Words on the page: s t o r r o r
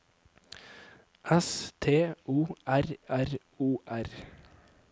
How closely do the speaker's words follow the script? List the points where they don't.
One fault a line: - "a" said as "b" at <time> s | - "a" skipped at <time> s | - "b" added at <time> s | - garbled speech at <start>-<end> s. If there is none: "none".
none